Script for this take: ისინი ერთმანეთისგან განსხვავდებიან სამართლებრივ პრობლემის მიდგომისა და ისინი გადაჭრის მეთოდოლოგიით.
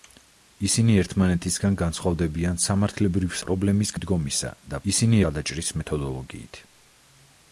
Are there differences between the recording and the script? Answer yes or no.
no